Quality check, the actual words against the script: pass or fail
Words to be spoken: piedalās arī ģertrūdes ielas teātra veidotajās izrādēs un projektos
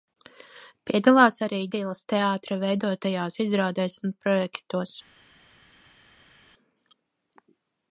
fail